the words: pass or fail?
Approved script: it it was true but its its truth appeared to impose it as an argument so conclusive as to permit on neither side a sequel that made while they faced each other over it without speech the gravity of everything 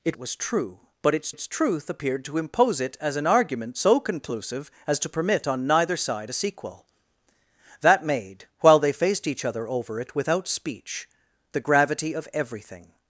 pass